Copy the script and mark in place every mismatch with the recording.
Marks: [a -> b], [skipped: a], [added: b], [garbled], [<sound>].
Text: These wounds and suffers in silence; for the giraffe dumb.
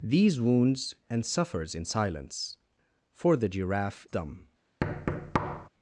These wounds and suffers in silence; for the giraffe dumb. [thud]